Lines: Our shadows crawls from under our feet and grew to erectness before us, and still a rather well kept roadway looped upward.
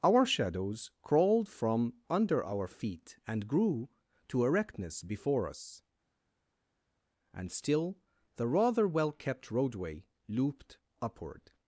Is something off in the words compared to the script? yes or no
yes